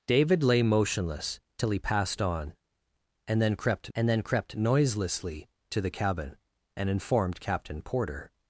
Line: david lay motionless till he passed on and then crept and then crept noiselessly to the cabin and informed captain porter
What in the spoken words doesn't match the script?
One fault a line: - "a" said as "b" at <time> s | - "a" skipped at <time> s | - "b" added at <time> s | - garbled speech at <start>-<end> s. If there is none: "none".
none